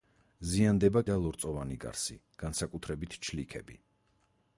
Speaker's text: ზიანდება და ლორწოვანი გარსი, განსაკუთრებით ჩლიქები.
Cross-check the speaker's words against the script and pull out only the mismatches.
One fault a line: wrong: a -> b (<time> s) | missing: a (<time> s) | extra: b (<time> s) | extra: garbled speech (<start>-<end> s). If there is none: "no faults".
no faults